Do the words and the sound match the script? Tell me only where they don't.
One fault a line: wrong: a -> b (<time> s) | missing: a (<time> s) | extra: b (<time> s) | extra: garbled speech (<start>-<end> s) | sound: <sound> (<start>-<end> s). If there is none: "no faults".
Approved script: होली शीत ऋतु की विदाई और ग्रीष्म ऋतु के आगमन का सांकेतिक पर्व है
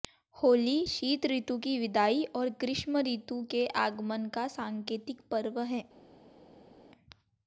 no faults